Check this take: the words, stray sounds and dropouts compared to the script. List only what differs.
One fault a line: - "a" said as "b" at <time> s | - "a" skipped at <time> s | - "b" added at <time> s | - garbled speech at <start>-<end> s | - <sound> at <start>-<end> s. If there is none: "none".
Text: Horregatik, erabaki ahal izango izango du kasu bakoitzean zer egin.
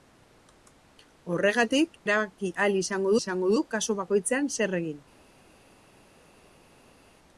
none